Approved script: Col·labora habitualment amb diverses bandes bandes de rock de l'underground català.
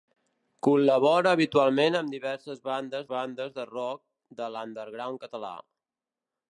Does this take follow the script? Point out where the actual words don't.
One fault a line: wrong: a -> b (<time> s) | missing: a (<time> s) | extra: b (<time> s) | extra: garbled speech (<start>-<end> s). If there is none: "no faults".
no faults